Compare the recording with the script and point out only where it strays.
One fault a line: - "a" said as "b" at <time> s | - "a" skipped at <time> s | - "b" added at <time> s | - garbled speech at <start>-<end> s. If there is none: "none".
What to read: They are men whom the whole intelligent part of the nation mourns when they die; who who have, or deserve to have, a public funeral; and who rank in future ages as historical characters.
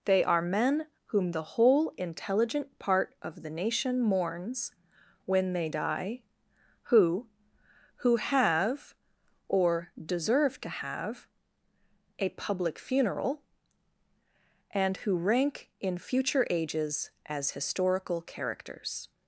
none